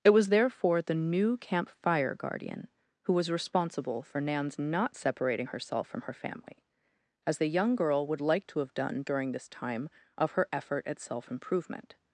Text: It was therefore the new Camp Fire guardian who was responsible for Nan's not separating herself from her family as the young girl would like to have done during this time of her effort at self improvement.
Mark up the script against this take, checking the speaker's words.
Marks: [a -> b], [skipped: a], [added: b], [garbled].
It was therefore the new Camp Fire guardian who was responsible for Nan's not separating herself from her family as the young girl would like to have done during this time of her effort at self improvement.